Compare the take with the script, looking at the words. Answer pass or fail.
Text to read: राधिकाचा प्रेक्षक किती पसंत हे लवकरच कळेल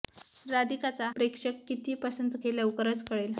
pass